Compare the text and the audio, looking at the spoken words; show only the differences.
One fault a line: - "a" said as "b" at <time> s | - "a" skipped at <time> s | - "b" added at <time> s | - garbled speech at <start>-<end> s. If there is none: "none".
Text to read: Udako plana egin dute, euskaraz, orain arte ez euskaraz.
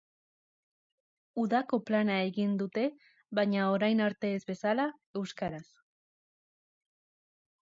- "euskaraz" said as "baina" at 3.4 s
- "bezala" added at 4.5 s